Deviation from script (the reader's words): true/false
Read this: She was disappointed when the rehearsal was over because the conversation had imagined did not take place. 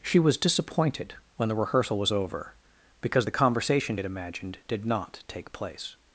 false